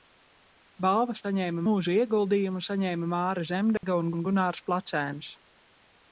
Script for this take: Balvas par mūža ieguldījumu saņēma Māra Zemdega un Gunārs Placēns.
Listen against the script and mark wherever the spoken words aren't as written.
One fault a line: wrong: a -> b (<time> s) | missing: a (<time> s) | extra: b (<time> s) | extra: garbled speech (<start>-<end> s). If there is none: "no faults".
wrong: par -> saņēma (1.2 s)
extra: un (4.2 s)